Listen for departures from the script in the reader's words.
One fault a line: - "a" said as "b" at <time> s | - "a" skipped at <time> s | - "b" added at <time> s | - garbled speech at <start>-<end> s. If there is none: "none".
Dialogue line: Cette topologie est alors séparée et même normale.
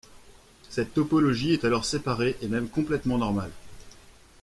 - "complètement" added at 2.7 s